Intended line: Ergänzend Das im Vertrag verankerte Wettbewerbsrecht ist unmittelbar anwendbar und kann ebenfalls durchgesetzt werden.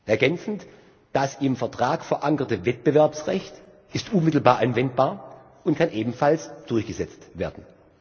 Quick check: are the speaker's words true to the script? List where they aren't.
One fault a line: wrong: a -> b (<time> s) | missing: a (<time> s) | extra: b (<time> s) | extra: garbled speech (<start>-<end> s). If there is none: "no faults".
no faults